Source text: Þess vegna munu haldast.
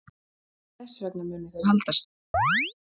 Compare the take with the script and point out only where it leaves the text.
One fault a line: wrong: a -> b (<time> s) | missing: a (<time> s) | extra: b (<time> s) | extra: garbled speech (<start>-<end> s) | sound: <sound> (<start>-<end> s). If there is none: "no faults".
extra: þau (1.6 s)
sound: chirp (2.3-2.7 s)